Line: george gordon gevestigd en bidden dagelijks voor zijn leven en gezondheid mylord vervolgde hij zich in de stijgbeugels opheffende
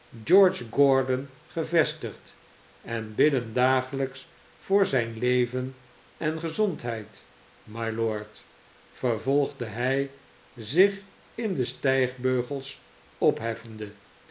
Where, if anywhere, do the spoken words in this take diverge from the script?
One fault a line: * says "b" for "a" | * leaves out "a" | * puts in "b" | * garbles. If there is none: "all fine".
all fine